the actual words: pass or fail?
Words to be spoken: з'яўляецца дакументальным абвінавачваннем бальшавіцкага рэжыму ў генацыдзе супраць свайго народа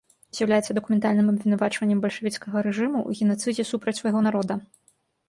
pass